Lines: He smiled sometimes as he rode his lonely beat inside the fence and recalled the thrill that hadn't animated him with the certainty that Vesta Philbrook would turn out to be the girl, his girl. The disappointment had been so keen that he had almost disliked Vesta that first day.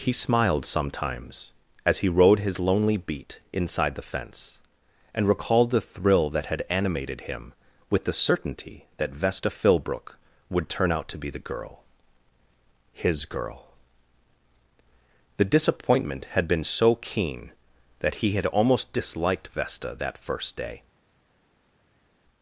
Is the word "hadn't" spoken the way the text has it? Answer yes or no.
no